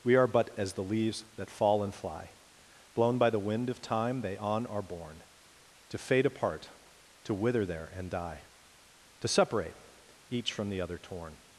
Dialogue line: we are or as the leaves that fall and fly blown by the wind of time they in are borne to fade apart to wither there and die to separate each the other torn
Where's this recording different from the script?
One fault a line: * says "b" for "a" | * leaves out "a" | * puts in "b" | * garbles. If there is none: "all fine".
* says "but" for "or"
* says "on" for "in"
* puts in "from"